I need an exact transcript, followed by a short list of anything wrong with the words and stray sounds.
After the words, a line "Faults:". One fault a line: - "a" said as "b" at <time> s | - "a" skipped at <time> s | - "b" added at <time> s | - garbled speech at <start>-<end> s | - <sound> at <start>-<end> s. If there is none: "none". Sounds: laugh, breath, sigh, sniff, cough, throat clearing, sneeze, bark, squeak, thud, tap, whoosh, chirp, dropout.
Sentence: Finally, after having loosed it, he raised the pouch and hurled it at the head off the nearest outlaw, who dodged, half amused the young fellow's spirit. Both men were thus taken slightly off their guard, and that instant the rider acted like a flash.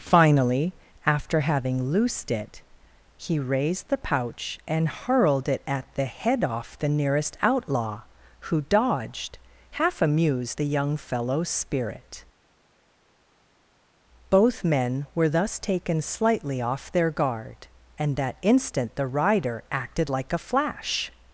Finally, after having loosed it, he raised the pouch and hurled it at the head off the nearest outlaw, who dodged, half amused the young fellow's spirit. Both men were thus taken slightly off their guard, and that instant the rider acted like a flash.
Faults:
none